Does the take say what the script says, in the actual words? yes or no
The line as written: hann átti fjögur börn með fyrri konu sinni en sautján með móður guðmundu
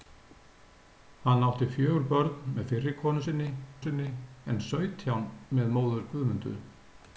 no